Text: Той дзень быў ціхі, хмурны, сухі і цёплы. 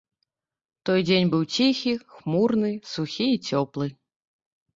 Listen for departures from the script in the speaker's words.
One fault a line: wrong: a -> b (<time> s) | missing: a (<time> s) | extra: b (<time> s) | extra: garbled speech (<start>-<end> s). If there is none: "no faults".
no faults